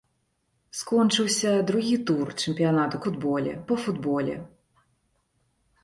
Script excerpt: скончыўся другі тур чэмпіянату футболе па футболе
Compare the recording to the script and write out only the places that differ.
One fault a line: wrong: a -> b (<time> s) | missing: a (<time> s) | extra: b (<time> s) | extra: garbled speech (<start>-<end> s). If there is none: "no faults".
no faults